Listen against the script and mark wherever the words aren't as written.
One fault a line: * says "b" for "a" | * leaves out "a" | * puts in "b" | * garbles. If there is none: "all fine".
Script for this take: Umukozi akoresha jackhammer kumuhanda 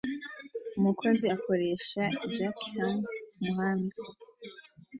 all fine